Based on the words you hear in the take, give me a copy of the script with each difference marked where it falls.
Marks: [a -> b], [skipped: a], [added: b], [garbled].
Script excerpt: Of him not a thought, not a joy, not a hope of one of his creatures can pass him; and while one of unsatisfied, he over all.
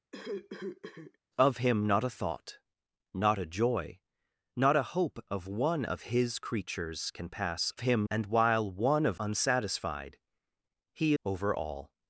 Of him not a thought, not a joy, not a hope of one of his creatures can pass him; and while one of unsatisfied, he over all.